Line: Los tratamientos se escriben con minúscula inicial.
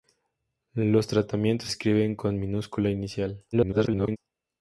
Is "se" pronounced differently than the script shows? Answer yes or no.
yes